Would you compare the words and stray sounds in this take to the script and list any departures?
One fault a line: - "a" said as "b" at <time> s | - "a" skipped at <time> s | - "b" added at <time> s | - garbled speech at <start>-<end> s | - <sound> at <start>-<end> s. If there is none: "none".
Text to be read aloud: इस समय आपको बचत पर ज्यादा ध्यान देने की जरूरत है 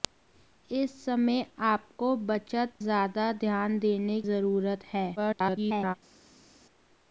- "पर" skipped at 2.7 s
- "की" skipped at 4.2 s
- garbled speech at 5.2-5.9 s